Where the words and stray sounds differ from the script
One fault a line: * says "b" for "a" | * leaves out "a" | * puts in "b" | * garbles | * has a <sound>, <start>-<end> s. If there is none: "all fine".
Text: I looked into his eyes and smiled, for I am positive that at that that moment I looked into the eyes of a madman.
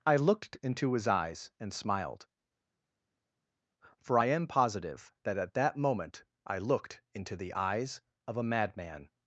* leaves out "that"